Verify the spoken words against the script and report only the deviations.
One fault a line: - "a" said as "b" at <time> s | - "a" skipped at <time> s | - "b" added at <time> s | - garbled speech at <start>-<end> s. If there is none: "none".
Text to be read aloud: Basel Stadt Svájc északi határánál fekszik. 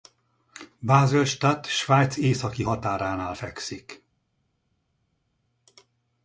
none